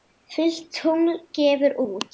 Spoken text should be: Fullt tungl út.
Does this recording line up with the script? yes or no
no